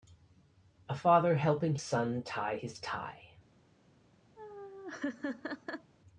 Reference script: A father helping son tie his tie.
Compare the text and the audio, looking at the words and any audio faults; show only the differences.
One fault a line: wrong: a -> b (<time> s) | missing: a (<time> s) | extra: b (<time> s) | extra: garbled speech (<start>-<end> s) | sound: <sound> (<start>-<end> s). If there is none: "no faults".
sound: laugh (4.4-5.9 s)